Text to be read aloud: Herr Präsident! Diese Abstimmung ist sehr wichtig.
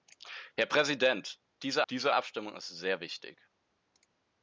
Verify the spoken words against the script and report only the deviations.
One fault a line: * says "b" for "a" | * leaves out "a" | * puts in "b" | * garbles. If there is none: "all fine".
* puts in "diese"